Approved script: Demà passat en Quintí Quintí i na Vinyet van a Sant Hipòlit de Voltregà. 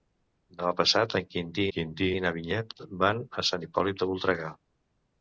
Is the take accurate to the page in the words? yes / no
yes